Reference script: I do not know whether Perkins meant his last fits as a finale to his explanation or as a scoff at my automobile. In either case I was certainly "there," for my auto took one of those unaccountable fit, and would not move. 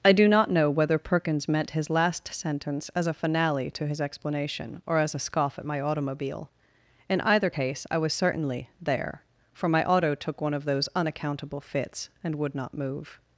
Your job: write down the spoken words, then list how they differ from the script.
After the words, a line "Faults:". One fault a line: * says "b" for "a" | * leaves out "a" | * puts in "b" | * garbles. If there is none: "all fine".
I do not know whether Perkins meant his last sentence as a finale to his explanation or as a scoff at my automobile. In either case I was certainly "there," for my auto took one of those unaccountable fits, and would not move.
Faults:
* says "sentence" for "fits"
* says "fits" for "fit"